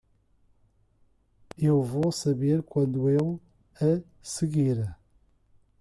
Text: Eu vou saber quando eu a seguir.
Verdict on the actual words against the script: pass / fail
pass